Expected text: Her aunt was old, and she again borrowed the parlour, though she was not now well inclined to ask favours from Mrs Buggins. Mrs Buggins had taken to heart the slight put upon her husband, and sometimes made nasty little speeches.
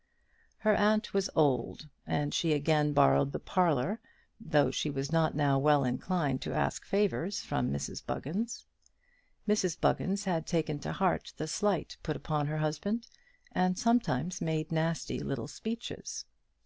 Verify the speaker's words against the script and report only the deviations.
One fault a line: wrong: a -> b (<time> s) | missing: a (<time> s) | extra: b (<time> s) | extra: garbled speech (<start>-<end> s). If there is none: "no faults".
no faults